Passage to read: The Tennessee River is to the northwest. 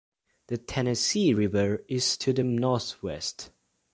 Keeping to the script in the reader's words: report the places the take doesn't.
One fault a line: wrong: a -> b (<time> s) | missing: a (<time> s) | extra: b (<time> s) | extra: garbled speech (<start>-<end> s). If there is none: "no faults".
no faults